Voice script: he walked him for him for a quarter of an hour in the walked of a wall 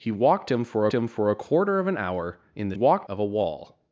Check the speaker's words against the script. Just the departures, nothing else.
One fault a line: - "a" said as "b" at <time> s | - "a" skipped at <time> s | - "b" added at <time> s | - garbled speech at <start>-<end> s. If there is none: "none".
none